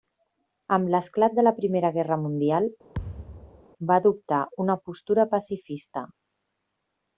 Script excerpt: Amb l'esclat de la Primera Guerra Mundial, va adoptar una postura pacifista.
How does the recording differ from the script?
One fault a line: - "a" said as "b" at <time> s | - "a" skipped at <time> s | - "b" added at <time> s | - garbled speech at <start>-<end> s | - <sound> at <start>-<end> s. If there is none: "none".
- thud at 2.9-3.6 s